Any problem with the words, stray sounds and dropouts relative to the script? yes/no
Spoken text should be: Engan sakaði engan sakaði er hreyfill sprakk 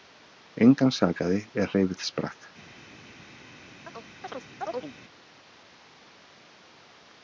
yes